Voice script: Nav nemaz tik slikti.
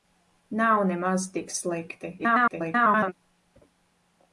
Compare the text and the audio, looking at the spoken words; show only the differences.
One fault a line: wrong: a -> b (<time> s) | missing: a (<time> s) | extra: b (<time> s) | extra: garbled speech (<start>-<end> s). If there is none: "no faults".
extra: garbled speech (2.2-3.1 s)